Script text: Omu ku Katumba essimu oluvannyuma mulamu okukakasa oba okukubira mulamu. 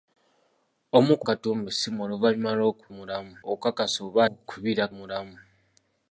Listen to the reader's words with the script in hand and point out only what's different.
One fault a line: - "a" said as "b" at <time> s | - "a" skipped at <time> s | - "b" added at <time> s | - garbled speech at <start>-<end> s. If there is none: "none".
none